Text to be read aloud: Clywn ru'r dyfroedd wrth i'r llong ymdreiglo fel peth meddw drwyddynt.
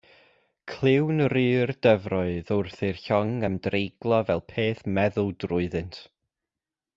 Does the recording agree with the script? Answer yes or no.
yes